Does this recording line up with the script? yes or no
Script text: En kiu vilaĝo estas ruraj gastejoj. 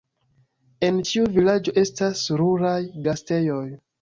no